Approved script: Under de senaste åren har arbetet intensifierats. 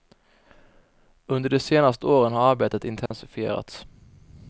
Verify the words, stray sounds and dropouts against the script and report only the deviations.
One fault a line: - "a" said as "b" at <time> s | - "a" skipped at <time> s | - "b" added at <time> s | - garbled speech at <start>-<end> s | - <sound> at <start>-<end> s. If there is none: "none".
- dropout at 3.1-3.1 s